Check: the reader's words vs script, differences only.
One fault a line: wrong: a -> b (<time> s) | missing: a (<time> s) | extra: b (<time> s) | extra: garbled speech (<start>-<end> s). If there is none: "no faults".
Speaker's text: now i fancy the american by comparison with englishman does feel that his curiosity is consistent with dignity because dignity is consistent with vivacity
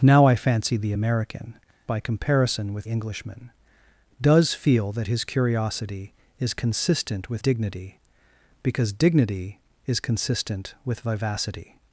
no faults